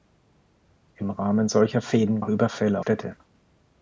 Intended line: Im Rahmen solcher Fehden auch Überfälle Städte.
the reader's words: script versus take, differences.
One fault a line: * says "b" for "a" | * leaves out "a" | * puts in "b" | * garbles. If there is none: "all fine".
all fine